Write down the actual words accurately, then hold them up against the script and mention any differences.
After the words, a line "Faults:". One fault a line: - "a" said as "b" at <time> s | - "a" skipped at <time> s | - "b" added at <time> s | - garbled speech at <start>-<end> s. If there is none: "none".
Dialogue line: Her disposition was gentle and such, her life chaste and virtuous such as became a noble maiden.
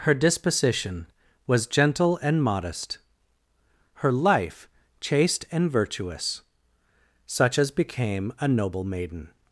Her disposition was gentle and modest, her life chaste and virtuous such as became a noble maiden.
Faults:
- "such" said as "modest" at 2.4 s